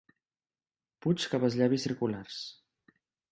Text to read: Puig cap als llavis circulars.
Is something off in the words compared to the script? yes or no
no